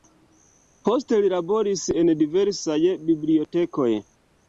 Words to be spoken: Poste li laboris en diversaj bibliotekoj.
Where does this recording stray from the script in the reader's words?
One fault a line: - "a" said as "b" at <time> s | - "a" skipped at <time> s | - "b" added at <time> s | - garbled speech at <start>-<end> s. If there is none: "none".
none